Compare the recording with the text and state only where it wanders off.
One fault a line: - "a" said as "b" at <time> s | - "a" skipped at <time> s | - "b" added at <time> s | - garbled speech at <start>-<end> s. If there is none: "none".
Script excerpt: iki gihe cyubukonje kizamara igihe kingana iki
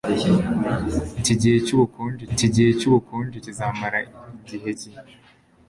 - "iki gihe cyubukonje" added at 2.3 s
- "kingana" skipped at 4.7 s